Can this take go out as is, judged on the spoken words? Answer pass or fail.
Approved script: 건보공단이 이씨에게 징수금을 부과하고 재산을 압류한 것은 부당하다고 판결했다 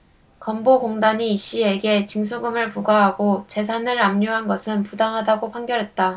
pass